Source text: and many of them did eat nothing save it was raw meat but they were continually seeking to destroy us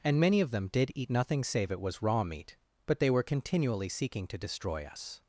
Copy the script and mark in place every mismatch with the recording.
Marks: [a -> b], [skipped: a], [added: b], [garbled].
and many of them did eat nothing save it was raw meat but they were continually seeking to destroy us